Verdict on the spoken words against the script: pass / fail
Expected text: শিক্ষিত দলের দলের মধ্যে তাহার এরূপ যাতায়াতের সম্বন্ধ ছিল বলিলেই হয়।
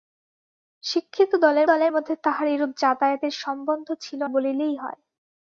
pass